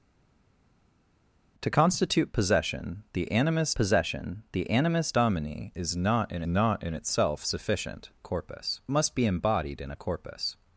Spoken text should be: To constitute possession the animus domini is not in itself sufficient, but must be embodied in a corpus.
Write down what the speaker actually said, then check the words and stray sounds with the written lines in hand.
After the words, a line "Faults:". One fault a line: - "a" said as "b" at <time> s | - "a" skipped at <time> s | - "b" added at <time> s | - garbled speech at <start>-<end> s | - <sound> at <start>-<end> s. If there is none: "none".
To constitute possession the animus possession the animus domini is not in not in itself sufficient, corpus must be embodied in a corpus.
Faults:
- "possession the animus" added at 3.7 s
- "not in" added at 6.5 s
- "but" said as "corpus" at 8.2 s